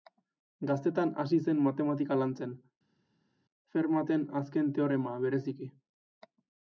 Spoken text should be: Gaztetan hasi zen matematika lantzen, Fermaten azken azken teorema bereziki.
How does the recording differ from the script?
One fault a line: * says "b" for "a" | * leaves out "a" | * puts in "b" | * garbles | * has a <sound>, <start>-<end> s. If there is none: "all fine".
* leaves out "azken"